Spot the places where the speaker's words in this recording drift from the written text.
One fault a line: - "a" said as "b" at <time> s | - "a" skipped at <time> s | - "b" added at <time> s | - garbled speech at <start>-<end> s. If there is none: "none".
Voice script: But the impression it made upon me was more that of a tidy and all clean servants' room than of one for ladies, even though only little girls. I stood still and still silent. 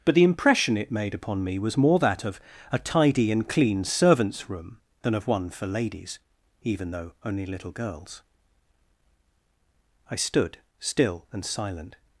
- "all" skipped at 3.5 s
- "still" skipped at 11.4 s